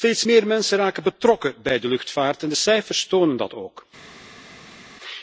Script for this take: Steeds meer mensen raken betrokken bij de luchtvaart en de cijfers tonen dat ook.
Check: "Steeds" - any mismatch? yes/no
no